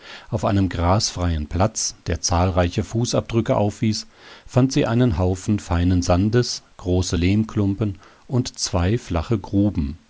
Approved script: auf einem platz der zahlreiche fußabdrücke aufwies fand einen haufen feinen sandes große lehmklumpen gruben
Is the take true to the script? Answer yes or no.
no